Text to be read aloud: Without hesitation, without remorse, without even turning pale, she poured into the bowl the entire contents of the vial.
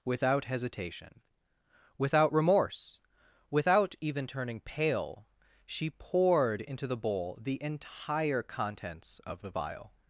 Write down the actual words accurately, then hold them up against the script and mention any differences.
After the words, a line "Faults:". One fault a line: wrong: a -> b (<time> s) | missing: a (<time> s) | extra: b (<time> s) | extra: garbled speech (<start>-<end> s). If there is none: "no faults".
Without hesitation, without remorse, without even turning pale, she poured into the bowl the entire contents of the vial.
Faults:
no faults